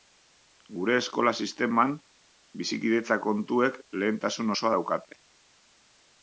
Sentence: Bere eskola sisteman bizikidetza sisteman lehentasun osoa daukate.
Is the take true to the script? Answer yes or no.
no